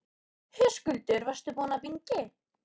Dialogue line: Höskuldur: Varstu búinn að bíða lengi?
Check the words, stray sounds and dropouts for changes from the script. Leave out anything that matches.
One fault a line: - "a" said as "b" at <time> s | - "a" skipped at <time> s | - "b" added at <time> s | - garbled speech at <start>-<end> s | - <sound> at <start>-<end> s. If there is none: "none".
- "bíða" skipped at 1.8 s